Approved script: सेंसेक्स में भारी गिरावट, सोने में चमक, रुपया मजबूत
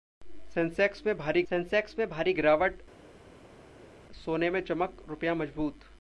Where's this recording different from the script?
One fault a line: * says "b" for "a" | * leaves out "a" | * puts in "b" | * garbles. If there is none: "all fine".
* puts in "सेंसेक्स में भारी"